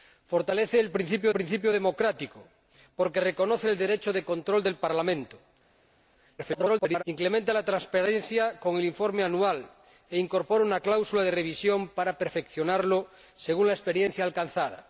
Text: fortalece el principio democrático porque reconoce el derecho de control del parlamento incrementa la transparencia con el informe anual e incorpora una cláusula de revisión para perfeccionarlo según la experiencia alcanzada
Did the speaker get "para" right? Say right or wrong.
right